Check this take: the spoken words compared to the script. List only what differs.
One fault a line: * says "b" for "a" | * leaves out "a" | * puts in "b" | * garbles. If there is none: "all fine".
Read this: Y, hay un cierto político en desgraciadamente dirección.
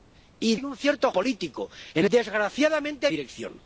all fine